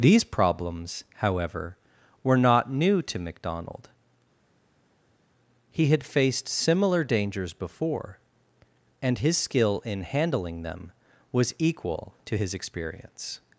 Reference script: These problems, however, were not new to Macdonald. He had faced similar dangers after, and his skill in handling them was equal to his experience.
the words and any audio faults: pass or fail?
fail